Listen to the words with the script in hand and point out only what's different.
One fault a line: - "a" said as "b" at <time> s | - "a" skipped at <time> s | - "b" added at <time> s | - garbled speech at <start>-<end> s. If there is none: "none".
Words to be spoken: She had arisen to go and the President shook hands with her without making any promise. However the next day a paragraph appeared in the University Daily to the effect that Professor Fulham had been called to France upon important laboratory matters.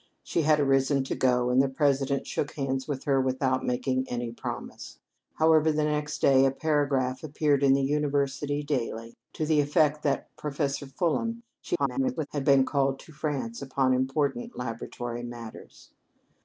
- garbled speech at 11.6-12.3 s